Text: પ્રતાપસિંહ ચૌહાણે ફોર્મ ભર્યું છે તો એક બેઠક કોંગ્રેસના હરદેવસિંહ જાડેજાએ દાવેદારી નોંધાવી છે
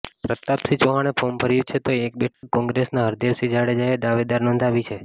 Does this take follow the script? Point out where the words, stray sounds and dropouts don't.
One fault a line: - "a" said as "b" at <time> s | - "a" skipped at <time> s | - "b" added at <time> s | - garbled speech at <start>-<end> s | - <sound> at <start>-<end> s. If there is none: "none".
- dropout at 2.3-2.4 s